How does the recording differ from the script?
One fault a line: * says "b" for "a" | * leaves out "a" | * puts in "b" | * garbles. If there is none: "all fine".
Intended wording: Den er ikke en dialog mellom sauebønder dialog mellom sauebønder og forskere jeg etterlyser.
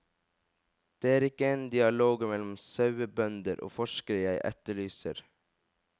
* says "Det" for "Den"
* leaves out "dialog mellom sauebønder"